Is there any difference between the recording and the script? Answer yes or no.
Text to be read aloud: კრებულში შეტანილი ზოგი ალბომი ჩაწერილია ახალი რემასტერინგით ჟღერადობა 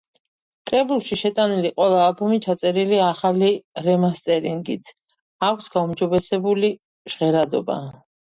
yes